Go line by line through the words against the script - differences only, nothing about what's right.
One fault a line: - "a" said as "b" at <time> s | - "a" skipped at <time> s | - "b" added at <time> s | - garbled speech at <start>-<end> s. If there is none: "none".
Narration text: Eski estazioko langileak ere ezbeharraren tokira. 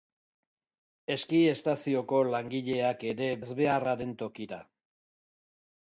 none